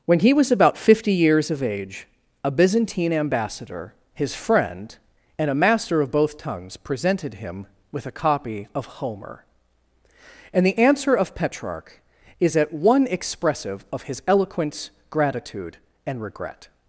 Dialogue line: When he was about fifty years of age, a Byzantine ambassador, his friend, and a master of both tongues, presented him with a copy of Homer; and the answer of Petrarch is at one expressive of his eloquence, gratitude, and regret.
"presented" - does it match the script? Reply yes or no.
yes